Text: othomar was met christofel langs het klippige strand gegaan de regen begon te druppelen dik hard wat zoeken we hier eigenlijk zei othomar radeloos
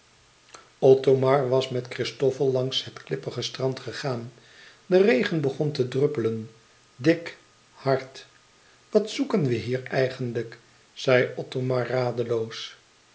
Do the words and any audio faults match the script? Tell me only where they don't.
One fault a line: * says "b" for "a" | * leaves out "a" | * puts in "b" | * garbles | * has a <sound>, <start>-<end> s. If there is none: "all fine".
all fine